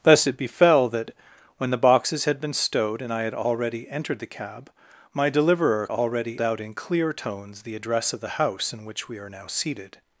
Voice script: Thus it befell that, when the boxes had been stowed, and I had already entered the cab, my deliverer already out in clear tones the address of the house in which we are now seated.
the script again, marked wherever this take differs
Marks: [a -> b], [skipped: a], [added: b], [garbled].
Thus it befell that, when the boxes had been stowed, and I had already entered the cab, my deliverer already out in clear tones the address of the house in which we are now seated.